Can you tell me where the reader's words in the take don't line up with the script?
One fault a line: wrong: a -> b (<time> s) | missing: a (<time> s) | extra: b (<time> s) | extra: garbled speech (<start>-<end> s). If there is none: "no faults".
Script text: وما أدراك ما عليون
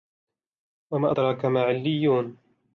no faults